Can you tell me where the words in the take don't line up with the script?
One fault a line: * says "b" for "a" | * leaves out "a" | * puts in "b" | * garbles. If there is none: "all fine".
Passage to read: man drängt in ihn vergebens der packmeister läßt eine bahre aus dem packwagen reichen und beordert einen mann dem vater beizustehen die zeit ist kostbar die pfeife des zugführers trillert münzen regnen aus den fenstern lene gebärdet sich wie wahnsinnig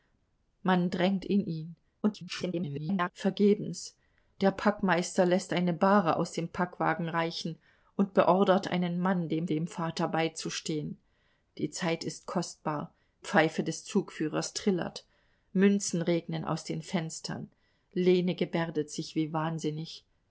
* garbles
* puts in "dem"
* leaves out "die"